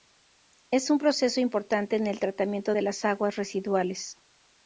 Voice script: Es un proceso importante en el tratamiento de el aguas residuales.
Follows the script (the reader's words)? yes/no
no